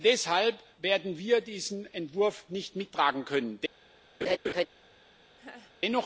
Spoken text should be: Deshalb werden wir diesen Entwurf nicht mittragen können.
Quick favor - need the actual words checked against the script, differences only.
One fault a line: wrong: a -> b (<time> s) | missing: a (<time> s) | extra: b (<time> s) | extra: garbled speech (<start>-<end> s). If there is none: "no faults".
no faults